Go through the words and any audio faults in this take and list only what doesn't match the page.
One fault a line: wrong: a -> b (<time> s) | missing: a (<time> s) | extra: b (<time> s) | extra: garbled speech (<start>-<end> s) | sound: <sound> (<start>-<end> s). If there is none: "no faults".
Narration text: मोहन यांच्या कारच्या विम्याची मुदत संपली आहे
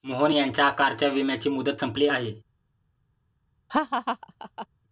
sound: laugh (3.7-4.7 s)